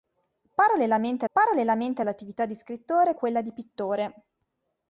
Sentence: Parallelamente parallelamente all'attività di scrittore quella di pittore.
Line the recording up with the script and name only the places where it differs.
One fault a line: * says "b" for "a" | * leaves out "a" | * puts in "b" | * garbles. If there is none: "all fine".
all fine